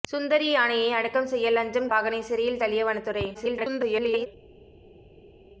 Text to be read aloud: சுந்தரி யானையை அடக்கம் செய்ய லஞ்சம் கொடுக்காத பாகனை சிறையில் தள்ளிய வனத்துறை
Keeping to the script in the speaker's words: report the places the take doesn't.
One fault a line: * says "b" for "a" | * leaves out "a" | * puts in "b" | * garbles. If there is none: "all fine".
* leaves out "கொடுக்காத"
* garbles